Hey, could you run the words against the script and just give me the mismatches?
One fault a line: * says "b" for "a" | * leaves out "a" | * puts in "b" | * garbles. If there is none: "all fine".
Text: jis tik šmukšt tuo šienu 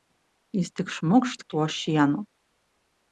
all fine